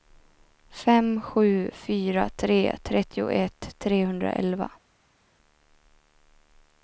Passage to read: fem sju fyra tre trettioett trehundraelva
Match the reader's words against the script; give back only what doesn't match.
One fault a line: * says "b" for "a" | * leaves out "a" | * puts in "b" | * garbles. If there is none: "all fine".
all fine